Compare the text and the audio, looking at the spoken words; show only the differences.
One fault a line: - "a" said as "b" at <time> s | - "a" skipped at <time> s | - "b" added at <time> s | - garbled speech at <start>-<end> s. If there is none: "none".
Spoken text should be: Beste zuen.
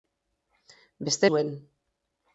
none